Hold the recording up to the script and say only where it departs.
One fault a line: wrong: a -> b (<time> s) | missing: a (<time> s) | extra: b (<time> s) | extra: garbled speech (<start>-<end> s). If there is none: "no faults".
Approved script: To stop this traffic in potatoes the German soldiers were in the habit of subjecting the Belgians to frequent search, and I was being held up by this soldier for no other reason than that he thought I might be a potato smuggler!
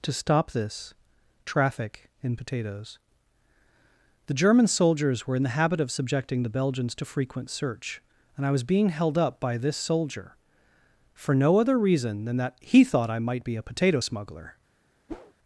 no faults